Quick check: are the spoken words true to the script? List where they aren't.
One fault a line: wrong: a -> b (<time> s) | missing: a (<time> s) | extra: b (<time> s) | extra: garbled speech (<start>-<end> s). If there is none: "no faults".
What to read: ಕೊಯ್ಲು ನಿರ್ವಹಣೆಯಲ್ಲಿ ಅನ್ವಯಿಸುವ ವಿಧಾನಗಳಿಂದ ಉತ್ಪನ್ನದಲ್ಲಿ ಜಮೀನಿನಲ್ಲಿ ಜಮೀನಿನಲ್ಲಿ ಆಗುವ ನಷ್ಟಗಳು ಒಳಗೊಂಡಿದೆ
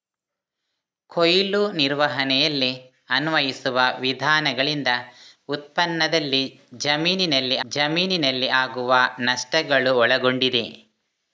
no faults